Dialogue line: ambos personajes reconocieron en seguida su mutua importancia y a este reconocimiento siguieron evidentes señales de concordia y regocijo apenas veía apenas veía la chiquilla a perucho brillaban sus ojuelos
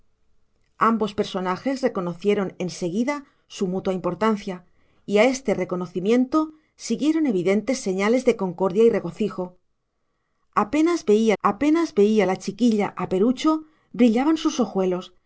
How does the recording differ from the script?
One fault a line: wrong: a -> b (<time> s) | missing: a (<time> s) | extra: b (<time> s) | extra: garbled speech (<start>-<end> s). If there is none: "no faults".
no faults